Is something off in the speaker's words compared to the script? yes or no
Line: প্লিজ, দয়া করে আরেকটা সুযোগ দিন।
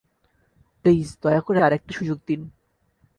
no